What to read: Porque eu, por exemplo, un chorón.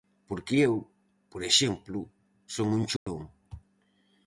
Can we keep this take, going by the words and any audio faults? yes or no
no